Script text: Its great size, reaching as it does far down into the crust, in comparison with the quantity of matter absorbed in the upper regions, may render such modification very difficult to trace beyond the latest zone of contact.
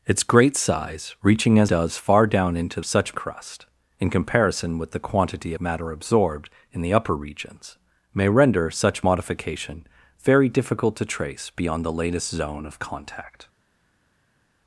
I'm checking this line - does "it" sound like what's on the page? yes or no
no